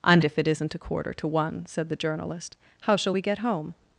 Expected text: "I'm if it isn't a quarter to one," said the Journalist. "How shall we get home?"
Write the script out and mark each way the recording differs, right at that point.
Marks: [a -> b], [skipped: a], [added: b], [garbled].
"I'm if it isn't a quarter to one," said the Journalist. "How shall we get home?"